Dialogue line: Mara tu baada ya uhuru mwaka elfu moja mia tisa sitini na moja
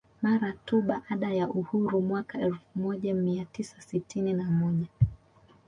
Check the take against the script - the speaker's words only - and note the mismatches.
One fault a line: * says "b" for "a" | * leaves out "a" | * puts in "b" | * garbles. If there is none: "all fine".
all fine